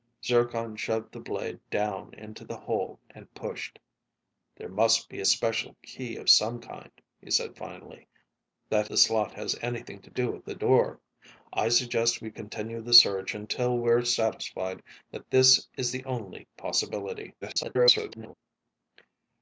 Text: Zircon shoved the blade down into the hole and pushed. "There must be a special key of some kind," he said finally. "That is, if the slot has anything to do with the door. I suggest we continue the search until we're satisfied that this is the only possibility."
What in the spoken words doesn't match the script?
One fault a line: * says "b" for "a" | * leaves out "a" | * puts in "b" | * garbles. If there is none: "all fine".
* leaves out "is if"
* garbles